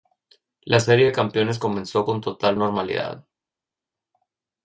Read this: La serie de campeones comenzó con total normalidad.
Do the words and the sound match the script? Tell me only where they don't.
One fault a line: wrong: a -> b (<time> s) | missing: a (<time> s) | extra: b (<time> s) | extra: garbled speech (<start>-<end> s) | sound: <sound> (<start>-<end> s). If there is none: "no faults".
no faults